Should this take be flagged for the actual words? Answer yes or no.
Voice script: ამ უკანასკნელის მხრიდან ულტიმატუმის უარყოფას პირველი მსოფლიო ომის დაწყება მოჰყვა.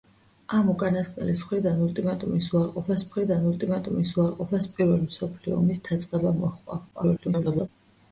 yes